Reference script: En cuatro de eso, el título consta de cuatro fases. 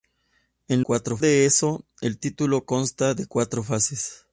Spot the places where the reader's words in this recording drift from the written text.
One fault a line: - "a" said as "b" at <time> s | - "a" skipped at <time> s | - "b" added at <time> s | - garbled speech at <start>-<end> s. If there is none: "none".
none